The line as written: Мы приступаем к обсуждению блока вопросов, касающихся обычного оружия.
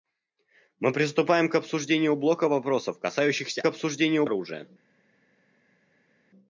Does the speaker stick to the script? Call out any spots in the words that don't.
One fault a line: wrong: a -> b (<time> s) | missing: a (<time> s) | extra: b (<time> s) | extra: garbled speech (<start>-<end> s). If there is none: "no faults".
wrong: обычного -> обсуждению (3.7 s)